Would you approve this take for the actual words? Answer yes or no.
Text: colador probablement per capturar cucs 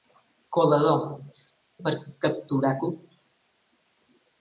no